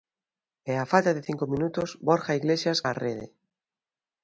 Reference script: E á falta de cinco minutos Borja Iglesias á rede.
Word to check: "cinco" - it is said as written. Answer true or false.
true